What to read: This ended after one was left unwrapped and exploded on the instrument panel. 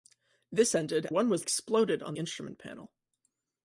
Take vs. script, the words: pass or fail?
fail